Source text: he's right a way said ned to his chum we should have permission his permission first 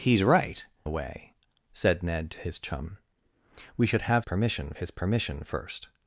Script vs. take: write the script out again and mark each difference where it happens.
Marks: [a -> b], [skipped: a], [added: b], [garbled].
he's right a way said ned to his chum we should have permission his permission first